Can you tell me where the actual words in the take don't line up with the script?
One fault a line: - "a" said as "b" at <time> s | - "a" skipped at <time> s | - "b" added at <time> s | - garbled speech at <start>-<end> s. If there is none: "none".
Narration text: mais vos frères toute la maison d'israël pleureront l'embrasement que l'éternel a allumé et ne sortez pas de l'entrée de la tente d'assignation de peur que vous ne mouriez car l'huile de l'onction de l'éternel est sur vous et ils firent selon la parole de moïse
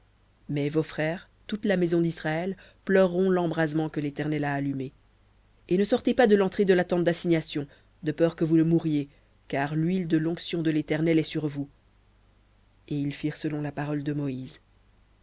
none